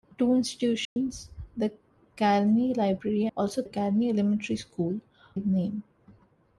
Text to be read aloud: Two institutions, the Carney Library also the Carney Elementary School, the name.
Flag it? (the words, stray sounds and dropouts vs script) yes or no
yes